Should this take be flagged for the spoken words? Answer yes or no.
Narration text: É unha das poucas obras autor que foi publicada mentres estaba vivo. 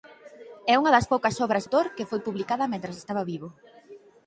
no